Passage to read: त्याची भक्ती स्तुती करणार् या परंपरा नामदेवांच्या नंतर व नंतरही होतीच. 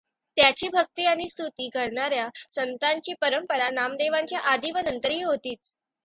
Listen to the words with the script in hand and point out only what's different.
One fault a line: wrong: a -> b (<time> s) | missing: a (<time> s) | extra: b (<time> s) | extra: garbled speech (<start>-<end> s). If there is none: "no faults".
extra: आणि (1.1 s)
extra: संतांची (2.5 s)
wrong: नंतर -> आधी (4.5 s)